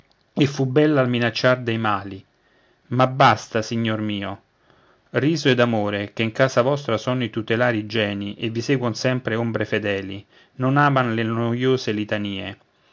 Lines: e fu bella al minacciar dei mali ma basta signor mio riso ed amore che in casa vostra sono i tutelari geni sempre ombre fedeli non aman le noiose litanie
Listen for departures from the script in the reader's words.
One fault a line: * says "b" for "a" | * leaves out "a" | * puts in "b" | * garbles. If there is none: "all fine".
* puts in "e vi seguon"